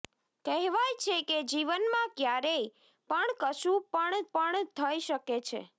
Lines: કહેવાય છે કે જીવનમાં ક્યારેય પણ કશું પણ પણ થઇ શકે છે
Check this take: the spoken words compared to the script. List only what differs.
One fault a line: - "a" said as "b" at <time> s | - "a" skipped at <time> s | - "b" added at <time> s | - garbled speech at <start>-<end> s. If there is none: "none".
none